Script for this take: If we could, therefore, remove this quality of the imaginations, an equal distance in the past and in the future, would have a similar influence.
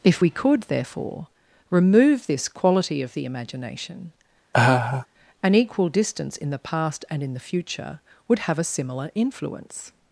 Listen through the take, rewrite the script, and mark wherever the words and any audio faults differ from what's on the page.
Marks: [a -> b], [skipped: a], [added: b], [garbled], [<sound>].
If we could, therefore, remove this quality of the [imaginations, -> imagination] [laugh] an equal distance in the past and in the future, would have a similar influence.